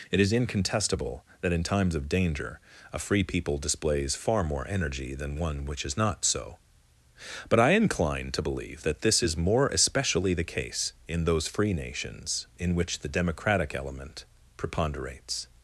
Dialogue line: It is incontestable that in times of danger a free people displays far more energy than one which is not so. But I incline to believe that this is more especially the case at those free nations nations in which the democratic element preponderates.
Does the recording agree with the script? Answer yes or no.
no